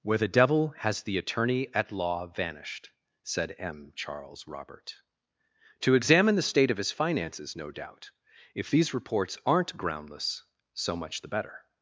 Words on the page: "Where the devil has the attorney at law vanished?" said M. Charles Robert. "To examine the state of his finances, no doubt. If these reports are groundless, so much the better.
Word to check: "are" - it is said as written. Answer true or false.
false